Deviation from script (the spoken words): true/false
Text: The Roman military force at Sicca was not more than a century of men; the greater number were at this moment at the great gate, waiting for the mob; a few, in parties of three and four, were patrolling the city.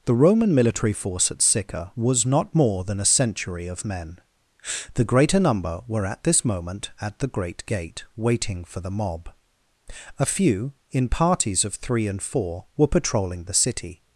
false